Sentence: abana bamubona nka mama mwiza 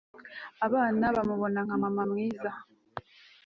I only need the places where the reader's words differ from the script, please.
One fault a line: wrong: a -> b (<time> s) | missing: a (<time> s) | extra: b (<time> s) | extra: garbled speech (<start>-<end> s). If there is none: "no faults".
no faults